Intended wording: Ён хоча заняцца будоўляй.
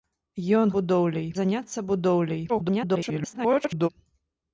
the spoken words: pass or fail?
fail